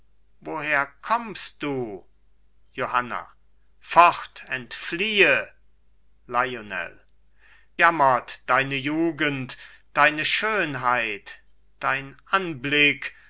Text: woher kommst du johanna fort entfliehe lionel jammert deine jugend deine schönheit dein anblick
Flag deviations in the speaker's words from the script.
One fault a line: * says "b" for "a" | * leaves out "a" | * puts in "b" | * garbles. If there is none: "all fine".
all fine